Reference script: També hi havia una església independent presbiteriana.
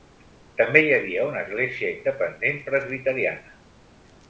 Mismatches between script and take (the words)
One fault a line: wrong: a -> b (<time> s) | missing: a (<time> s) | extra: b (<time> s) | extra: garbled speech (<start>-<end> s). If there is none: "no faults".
no faults